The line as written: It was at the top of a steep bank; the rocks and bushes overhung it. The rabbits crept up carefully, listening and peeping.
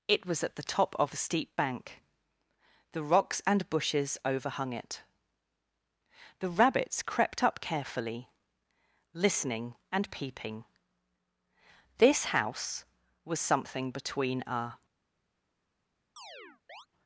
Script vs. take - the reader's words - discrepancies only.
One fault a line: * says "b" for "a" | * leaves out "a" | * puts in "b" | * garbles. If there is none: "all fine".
* puts in "This house was something between a"